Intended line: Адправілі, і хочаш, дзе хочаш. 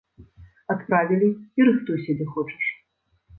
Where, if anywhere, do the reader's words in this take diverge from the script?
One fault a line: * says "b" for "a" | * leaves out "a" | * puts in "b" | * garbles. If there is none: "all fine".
* says "рыхтуйся" for "хочаш"